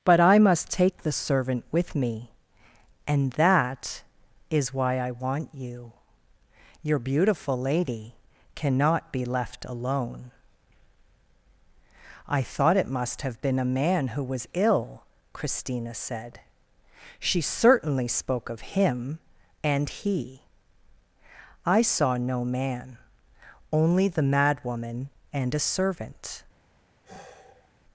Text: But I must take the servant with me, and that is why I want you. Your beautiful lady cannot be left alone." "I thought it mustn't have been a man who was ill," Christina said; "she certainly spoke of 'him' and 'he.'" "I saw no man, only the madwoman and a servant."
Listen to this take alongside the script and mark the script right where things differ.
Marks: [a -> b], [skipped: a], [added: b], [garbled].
But I must take the servant with me, and that is why I want you. Your beautiful lady cannot be left alone." "I thought it [mustn't -> must] have been a man who was ill," Christina said; "she certainly spoke of 'him' and 'he.'" "I saw no man, only the madwoman and a servant."